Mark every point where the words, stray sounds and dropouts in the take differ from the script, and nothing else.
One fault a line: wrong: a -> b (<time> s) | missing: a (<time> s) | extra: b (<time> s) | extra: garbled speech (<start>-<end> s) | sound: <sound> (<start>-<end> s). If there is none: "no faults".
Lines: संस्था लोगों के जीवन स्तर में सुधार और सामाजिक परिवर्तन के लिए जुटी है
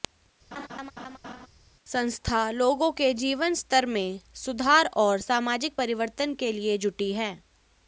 sound: laugh (0.5-1.5 s)